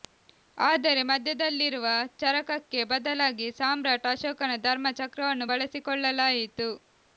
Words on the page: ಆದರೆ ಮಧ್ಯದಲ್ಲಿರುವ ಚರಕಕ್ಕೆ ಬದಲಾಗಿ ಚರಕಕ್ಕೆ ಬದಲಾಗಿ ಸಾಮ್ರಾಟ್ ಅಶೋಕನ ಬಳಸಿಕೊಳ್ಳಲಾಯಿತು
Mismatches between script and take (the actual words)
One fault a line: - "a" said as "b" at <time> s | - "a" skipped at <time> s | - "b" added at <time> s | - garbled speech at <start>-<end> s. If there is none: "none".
- "ಚರಕಕ್ಕೆ ಬದಲಾಗಿ ಸಾಮ್ರಾಟ್ ಅಶೋಕನ" said as "ಸಾಮ್ರಾಟ್ ಅಶೋಕನ ಧರ್ಮ ಚಕ್ರವನ್ನು" at 3.6 s